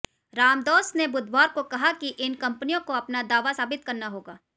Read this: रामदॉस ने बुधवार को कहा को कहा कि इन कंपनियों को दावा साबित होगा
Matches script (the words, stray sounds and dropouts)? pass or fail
fail